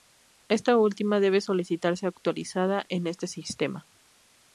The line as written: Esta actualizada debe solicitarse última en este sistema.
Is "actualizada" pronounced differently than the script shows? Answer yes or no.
yes